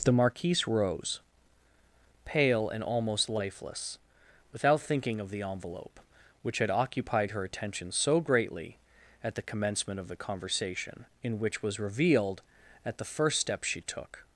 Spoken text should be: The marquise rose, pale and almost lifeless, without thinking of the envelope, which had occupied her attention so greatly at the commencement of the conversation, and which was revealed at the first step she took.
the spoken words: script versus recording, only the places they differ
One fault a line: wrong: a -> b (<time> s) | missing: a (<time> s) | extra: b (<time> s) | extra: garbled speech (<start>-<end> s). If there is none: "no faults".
wrong: and -> in (11.2 s)